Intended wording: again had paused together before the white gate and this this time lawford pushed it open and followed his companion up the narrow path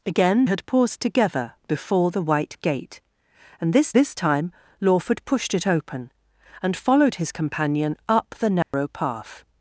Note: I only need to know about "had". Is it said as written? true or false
true